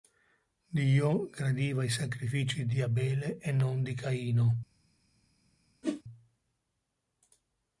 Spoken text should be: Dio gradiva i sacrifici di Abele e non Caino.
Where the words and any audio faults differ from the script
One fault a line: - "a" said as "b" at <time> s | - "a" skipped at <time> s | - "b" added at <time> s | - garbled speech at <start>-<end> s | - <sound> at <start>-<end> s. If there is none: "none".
- "di" added at 3.8 s
- whoosh at 5.8-6.0 s